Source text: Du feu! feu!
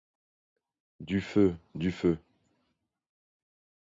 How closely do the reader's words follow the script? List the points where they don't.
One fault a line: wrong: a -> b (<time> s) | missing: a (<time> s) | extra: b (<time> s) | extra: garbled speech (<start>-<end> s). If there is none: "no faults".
extra: du (1.8 s)